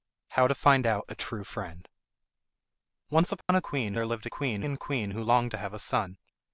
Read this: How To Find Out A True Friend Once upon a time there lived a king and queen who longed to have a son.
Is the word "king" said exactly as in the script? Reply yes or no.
no